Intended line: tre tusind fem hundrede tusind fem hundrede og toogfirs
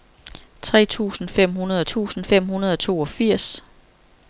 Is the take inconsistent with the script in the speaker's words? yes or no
no